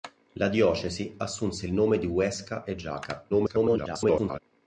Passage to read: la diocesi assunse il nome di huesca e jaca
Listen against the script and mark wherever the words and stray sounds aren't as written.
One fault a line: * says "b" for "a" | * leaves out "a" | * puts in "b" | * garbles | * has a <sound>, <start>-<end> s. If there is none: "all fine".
* garbles